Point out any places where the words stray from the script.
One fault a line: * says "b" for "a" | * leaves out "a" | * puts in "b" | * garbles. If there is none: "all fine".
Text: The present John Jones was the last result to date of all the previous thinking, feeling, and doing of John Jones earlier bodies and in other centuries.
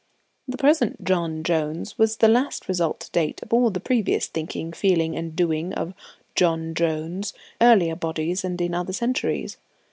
all fine